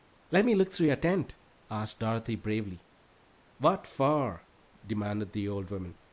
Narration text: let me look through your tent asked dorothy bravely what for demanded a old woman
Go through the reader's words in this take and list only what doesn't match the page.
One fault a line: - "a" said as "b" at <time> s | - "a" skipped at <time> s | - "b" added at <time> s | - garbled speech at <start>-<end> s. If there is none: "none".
- "a" said as "the" at 5.3 s